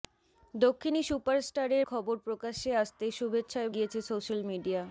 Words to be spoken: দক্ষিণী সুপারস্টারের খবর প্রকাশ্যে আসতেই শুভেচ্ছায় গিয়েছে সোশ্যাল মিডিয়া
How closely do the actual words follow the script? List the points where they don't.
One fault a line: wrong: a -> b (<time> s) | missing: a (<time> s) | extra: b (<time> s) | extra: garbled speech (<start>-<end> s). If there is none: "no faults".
no faults